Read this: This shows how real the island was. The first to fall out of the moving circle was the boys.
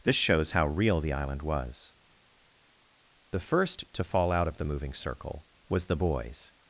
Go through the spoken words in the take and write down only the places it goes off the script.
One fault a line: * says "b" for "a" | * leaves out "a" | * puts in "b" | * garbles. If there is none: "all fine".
all fine